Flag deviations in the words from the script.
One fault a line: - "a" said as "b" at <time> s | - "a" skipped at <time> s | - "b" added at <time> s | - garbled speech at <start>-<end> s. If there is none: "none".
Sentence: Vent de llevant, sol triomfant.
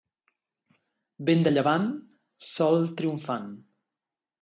none